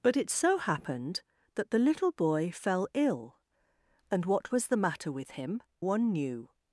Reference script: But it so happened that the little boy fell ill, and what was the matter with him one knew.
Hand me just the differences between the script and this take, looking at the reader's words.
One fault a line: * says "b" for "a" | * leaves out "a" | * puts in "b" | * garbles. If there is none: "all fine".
all fine